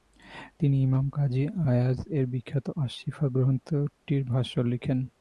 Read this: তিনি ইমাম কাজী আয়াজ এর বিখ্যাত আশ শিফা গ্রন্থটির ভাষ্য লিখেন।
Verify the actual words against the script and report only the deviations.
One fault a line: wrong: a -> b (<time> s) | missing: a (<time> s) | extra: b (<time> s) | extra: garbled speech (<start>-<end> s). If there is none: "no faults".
no faults